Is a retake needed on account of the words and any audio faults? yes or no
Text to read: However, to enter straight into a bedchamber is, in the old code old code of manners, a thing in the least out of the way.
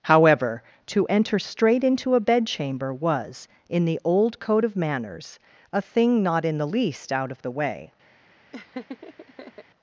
yes